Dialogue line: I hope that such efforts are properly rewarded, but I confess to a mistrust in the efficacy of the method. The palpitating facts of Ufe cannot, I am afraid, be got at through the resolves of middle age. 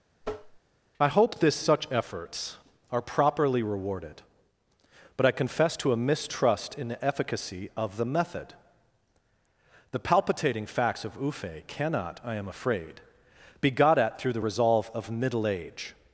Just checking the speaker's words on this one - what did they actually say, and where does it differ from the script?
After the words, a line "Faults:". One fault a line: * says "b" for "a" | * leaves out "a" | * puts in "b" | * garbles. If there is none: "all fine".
I hope this such efforts are properly rewarded, but I confess to a mistrust in the efficacy of the method. The palpitating facts of Ufe cannot, I am afraid, be got at through the resolve of middle age.
Faults:
* says "this" for "that"
* says "resolve" for "resolves"